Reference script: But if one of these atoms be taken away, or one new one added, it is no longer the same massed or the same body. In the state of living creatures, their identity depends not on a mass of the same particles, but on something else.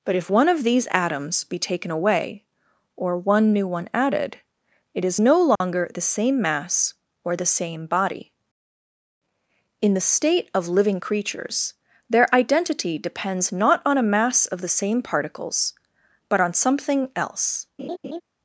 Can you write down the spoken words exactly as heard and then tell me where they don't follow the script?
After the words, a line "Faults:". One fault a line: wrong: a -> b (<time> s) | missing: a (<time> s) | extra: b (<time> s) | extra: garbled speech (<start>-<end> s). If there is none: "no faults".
But if one of these atoms be taken away, or one new one added, it is no longer the same mass or the same body. In the state of living creatures, their identity depends not on a mass of the same particles, but on something else.
Faults:
wrong: massed -> mass (6.4 s)